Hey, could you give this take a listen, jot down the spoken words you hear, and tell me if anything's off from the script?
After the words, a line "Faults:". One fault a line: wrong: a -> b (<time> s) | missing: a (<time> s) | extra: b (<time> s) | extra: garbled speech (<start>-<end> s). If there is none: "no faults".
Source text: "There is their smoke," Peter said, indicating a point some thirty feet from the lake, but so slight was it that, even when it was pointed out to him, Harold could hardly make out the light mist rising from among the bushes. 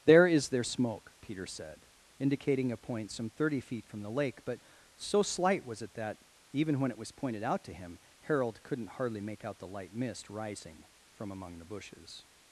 "There is their smoke," Peter said, indicating a point some thirty feet from the lake, but so slight was it that, even when it was pointed out to him, Harold couldn't hardly make out the light mist rising from among the bushes.
Faults:
wrong: could -> couldn't (8.6 s)